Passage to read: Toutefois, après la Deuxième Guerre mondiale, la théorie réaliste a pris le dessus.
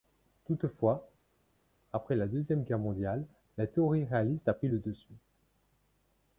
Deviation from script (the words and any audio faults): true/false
false